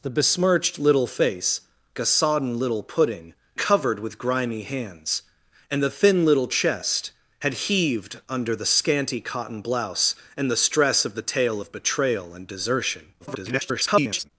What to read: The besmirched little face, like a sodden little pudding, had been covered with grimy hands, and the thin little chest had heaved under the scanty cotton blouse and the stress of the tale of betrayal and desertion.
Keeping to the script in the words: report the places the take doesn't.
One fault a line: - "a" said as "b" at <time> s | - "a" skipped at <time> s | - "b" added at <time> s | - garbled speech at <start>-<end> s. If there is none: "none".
- "like" skipped at 1.6 s
- "had been" skipped at 3.3 s
- garbled speech at 13.2-14.3 s